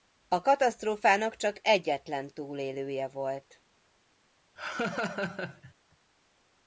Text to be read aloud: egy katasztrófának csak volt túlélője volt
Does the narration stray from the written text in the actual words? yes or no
yes